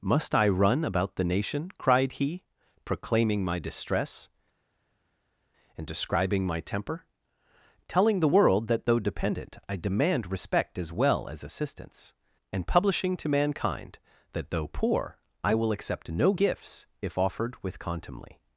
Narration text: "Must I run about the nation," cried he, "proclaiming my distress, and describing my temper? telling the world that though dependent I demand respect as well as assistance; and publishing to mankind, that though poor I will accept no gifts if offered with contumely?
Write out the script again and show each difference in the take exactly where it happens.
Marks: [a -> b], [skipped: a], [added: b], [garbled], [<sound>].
"Must I run about the nation," cried he, "proclaiming my distress, and describing my temper? telling the world that though dependent I demand respect as well as assistance; and publishing to mankind, that though poor I will accept no gifts if offered with contumely?